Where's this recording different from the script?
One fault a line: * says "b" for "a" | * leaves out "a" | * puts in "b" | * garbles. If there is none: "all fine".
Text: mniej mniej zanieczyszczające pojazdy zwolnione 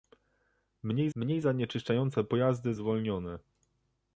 all fine